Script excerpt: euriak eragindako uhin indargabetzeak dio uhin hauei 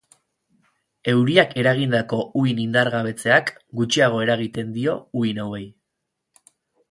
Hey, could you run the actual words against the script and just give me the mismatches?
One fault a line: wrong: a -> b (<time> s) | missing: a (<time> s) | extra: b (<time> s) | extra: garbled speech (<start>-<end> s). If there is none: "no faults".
extra: gutxiago eragiten (3.8 s)